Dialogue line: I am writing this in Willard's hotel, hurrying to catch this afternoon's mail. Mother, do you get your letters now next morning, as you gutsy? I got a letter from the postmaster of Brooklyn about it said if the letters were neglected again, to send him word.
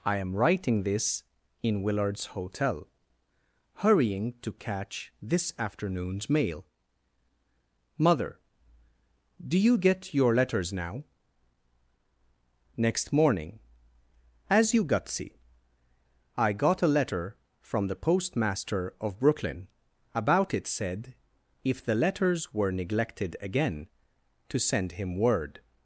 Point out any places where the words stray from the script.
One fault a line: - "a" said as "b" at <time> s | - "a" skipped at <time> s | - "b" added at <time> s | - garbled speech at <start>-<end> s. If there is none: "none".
none